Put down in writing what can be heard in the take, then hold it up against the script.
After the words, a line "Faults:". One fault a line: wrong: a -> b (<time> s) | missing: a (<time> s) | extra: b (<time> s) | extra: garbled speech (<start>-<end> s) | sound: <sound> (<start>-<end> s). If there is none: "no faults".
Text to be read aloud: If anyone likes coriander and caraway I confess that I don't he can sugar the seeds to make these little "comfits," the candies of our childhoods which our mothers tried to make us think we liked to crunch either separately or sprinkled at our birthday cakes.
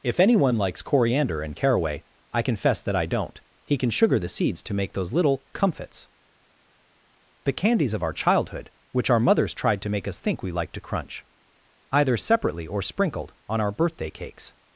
If anyone likes coriander and caraway I confess that I don't he can sugar the seeds to make those little "comfits," the candies of our childhood which our mothers tried to make us think we liked to crunch either separately or sprinkled on our birthday cakes.
Faults:
wrong: these -> those (4.9 s)
wrong: childhoods -> childhood (8.1 s)
wrong: at -> on (13.5 s)